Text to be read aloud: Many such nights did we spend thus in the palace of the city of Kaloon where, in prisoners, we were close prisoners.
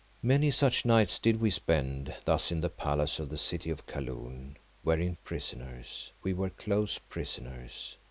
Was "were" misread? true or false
false